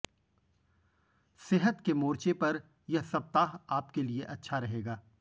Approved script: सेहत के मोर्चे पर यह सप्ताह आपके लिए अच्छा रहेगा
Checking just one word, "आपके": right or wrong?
right